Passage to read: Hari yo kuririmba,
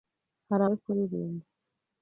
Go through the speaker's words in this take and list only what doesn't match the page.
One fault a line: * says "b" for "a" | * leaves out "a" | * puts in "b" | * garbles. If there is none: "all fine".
all fine